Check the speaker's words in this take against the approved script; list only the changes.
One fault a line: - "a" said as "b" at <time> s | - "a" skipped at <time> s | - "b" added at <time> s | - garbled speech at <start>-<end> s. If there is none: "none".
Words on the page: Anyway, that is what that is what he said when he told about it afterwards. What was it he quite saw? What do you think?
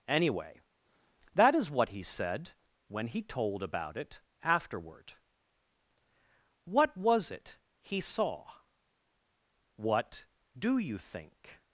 - "that is what" skipped at 1.9 s
- "afterwards" said as "afterward" at 4.4 s
- "quite" skipped at 8.0 s